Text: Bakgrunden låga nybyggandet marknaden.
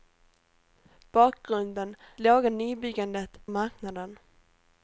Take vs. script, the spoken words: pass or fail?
pass